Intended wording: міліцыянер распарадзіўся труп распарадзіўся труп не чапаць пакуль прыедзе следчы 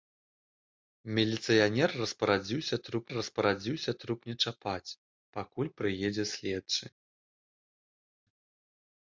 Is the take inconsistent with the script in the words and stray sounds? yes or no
no